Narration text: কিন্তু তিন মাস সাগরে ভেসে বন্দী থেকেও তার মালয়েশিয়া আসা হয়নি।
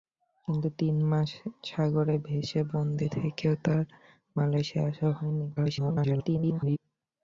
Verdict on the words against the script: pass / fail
fail